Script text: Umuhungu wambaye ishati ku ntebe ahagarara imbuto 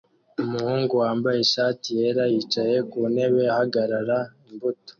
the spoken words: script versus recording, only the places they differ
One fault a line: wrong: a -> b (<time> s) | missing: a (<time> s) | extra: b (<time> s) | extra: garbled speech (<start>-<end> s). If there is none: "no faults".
extra: yera yicaye (2.0 s)